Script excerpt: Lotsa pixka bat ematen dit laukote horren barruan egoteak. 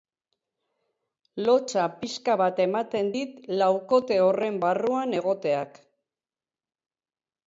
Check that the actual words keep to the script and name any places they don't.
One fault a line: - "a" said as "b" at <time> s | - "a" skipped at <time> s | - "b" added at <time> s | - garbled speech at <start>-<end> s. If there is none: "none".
none